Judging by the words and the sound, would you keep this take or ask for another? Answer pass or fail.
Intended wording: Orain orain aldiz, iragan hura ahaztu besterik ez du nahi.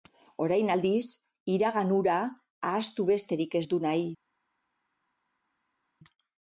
fail